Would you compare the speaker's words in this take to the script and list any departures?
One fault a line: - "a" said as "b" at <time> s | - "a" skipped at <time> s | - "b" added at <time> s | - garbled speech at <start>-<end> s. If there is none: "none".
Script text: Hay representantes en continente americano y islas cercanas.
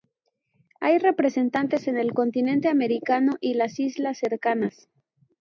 - "el" added at 2.0 s
- "las" added at 3.5 s